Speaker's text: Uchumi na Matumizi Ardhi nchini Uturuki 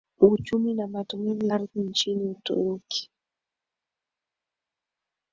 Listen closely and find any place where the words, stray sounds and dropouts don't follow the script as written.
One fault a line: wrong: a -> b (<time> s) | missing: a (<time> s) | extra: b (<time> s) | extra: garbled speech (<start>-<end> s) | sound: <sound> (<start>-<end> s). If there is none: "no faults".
no faults